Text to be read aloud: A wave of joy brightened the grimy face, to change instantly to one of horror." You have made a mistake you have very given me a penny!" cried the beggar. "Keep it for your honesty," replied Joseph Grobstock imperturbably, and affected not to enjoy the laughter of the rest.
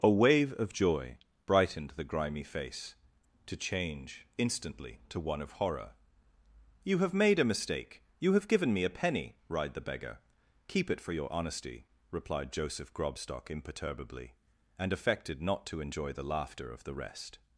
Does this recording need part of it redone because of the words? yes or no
yes